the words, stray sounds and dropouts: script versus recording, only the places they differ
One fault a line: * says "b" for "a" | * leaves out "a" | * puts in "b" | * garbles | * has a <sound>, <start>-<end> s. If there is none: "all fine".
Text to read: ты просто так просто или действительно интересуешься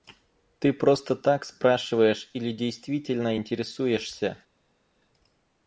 * says "спрашиваешь" for "просто"